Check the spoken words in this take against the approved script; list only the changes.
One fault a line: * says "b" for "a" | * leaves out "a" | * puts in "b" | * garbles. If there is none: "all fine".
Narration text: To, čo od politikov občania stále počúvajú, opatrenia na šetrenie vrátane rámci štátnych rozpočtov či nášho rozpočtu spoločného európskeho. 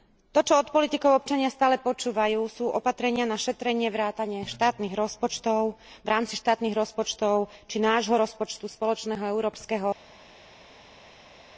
* puts in "sú"
* puts in "štátnych rozpočtov v"